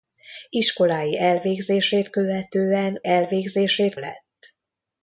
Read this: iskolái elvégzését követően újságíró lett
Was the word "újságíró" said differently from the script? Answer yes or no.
yes